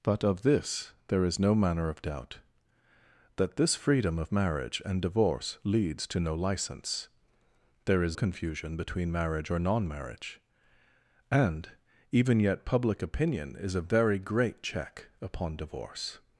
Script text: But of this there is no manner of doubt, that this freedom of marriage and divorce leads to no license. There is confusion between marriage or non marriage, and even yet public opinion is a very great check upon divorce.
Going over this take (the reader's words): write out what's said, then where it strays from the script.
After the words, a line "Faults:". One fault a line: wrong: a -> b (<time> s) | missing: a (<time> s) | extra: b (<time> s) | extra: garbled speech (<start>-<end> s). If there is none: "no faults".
But of this there is no manner of doubt, that this freedom of marriage and divorce leads to no license. There is confusion between marriage or non marriage, and even yet public opinion is a very great check upon divorce.
Faults:
no faults